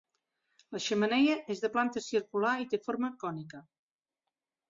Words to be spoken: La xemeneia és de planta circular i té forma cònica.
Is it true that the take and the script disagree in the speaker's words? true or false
false